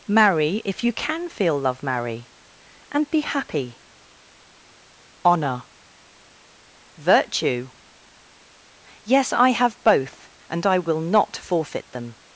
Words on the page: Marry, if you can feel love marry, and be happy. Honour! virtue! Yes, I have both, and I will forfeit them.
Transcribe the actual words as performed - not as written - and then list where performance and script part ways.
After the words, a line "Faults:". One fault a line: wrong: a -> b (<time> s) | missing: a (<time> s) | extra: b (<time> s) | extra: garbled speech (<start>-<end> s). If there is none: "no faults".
Marry, if you can feel love marry, and be happy. Honour! virtue! Yes, I have both, and I will not forfeit them.
Faults:
extra: not (11.0 s)